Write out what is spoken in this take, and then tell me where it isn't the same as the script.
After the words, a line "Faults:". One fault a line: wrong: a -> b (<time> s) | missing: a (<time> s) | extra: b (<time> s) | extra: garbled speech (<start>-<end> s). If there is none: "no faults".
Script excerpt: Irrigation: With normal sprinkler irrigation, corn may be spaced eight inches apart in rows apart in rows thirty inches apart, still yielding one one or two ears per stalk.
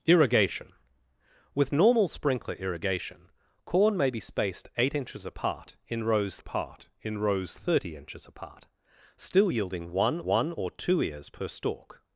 Irrigation: With normal sprinkler irrigation, corn may be spaced eight inches apart in rows apart in rows thirty inches apart, still yielding one one or two ears per stalk.
Faults:
no faults